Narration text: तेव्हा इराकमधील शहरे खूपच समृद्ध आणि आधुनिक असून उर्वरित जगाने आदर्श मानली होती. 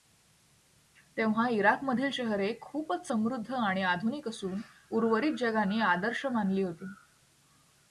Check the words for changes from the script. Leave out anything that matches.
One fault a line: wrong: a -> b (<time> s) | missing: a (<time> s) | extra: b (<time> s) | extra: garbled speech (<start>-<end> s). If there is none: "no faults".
no faults